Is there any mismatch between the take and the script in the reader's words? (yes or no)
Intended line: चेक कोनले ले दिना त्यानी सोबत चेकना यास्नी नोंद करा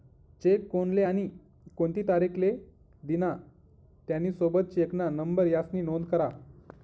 yes